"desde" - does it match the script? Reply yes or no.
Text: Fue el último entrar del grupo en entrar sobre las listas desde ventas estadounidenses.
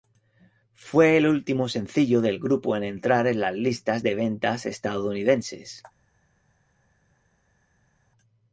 no